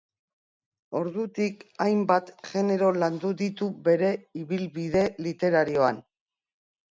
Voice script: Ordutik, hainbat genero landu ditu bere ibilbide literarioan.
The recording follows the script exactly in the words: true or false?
true